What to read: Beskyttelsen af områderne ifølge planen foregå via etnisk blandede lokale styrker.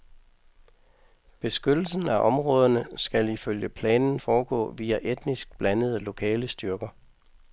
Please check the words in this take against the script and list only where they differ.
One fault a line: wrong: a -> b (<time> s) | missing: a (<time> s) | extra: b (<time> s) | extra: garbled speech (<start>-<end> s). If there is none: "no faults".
extra: skal (3.0 s)